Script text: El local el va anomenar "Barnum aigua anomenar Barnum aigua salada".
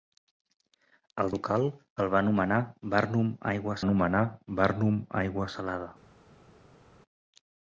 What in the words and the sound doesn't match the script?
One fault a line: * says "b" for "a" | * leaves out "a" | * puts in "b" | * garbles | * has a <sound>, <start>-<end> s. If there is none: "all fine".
all fine